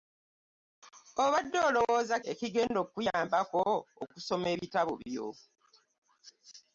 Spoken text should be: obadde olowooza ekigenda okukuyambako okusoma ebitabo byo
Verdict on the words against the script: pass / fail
pass